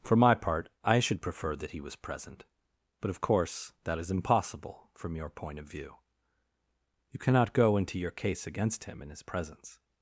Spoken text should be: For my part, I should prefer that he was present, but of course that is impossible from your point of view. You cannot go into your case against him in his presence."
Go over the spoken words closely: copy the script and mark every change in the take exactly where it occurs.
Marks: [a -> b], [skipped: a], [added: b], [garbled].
For my part, I should prefer that he was present, but of course that is impossible from your point of view. You cannot go into your case against him in his presence."